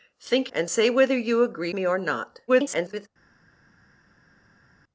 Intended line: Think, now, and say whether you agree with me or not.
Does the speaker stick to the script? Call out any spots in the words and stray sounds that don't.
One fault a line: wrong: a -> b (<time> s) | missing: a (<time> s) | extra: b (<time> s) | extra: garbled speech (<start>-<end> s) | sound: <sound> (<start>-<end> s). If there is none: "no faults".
missing: now (0.5 s)
missing: with (1.7 s)
extra: garbled speech (2.5-3.1 s)